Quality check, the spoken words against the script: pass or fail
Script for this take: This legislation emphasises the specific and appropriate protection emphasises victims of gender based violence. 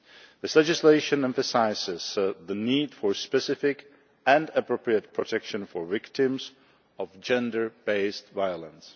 fail